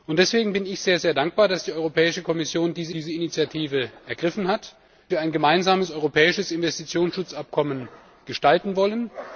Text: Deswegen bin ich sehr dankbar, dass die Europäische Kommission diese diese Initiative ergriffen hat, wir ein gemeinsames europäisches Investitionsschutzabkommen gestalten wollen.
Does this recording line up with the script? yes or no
yes